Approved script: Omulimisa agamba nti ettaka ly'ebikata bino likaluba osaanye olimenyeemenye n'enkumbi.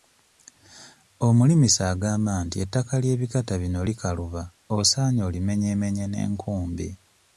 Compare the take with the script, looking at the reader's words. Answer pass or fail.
pass